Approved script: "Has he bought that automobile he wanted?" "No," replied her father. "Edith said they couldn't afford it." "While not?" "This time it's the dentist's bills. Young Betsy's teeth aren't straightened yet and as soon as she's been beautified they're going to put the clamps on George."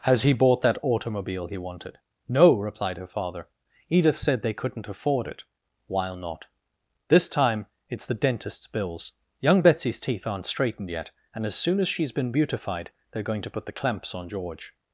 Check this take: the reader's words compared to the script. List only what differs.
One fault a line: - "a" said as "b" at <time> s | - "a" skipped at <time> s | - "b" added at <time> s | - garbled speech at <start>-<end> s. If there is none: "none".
none